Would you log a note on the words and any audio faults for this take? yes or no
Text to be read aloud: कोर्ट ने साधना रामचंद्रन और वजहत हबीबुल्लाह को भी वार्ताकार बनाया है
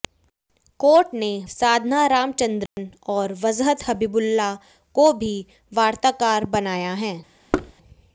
yes